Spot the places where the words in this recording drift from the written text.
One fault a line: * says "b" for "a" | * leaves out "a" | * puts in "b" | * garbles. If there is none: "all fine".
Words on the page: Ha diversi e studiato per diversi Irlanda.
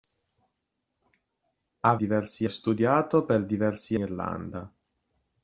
all fine